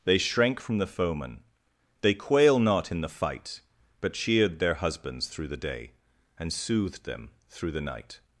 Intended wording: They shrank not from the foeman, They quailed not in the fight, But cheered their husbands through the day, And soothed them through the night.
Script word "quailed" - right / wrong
wrong